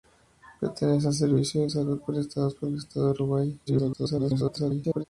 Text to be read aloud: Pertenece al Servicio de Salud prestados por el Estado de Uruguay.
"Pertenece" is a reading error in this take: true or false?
false